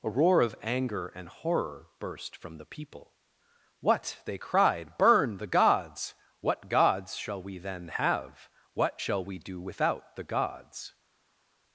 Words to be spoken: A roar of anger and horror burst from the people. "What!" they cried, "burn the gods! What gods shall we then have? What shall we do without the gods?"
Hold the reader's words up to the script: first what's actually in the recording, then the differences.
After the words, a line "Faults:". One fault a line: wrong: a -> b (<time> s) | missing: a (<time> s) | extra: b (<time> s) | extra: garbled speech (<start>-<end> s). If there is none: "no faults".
A roar of anger and horror burst from the people. "What!" they cried, "burn the gods! What gods shall we then have? What shall we do without the gods?"
Faults:
no faults